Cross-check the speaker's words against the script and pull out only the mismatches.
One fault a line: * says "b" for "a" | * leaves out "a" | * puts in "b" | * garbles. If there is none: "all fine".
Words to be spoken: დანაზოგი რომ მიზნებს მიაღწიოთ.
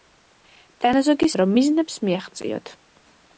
all fine